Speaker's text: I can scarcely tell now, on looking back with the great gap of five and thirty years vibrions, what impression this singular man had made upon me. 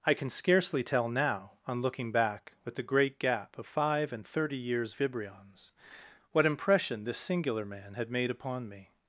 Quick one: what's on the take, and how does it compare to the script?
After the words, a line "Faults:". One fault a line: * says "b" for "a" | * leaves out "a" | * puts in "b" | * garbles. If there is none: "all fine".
I can scarcely tell now, on looking back with the great gap of five and thirty years vibrions, what impression this singular man had made upon me.
Faults:
all fine